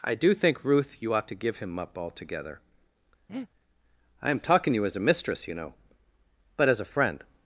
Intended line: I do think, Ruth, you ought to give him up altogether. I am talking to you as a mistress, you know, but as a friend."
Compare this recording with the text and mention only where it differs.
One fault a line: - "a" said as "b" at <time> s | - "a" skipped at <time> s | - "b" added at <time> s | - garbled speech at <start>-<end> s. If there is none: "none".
none